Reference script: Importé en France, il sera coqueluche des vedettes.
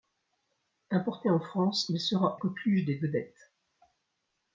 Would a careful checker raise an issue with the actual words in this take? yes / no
no